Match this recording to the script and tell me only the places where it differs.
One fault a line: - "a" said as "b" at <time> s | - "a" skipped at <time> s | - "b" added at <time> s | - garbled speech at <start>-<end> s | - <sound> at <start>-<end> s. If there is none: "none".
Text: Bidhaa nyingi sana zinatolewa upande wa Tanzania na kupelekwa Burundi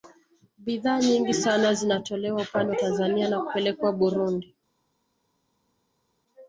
none